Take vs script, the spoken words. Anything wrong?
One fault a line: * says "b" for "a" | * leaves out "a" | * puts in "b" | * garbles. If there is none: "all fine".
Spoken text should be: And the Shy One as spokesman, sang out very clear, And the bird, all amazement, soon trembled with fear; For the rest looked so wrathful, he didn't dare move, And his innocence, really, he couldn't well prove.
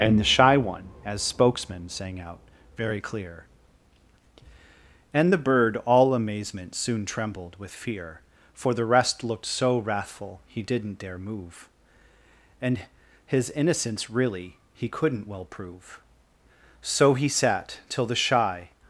* puts in "So he sat till the Shy"